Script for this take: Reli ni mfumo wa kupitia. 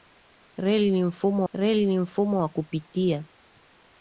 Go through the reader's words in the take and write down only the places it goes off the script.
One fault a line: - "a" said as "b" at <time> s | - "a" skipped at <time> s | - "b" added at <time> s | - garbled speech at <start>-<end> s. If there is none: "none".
- "reli ni mfumo" added at 1.5 s